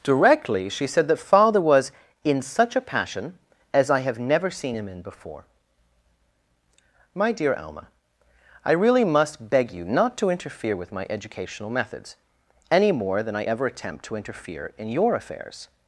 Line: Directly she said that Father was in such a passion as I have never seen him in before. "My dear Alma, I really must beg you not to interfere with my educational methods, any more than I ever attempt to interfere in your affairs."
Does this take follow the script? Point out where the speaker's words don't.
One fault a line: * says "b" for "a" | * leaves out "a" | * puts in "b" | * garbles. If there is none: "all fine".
all fine